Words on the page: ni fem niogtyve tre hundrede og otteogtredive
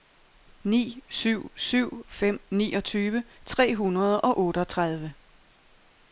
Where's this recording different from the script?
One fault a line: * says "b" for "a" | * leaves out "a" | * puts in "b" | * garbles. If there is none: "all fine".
* puts in "syv syv"